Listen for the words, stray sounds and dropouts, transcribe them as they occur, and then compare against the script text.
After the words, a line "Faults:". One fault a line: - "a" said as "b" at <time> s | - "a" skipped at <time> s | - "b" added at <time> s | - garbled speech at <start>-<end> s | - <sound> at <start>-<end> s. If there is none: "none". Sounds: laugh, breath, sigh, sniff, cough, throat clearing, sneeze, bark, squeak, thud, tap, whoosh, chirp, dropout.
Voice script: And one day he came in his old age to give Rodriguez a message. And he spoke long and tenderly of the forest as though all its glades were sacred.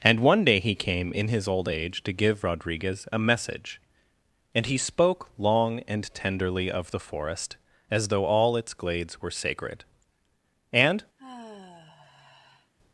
And one day he came in his old age to give Rodriguez a message. And he spoke long and tenderly of the forest as though all its glades were sacred. And
Faults:
- "And" added at 10.7 s
- sigh at 11.2-12.7 s